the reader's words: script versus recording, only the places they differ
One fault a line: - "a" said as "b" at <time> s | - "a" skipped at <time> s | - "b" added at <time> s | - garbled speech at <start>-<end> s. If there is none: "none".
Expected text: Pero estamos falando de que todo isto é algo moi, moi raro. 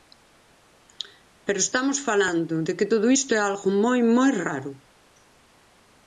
none